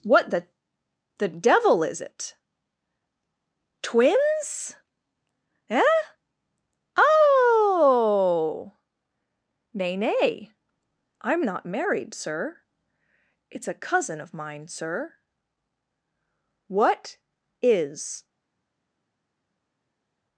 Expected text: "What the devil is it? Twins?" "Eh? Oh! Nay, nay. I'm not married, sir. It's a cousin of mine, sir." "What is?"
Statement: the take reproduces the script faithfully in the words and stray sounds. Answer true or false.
false